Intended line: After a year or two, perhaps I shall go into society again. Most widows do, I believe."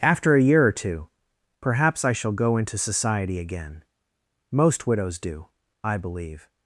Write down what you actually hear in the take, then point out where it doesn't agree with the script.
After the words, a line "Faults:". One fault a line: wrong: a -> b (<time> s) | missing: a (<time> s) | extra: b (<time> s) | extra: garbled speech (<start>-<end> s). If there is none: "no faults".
After a year or two, perhaps I shall go into society again. Most widows do, I believe."
Faults:
no faults